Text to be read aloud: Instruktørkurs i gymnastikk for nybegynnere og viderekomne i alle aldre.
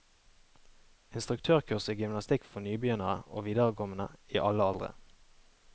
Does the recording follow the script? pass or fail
pass